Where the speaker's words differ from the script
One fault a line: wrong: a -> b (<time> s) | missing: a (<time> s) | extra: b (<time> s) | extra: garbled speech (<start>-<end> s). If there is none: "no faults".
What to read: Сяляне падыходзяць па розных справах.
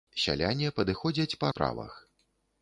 missing: розных (1.5 s)